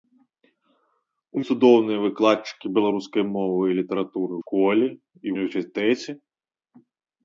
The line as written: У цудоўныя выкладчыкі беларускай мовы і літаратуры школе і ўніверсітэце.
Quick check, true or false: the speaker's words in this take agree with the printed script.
true